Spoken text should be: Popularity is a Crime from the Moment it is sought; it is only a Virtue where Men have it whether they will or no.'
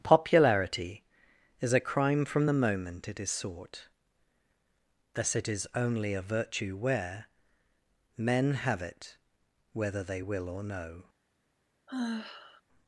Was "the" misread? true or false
false